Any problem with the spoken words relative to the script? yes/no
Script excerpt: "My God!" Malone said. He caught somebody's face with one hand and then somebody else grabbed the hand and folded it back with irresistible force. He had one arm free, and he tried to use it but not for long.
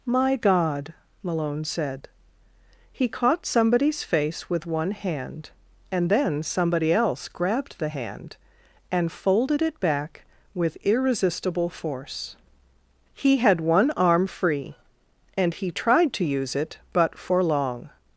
yes